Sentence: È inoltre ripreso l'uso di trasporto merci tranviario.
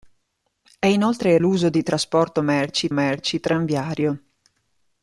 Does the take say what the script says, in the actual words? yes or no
no